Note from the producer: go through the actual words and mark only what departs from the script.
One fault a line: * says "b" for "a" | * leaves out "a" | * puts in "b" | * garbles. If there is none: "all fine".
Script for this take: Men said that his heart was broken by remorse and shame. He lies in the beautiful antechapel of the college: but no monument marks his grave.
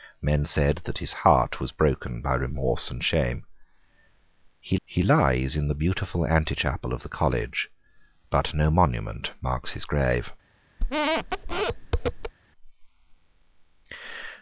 * puts in "he"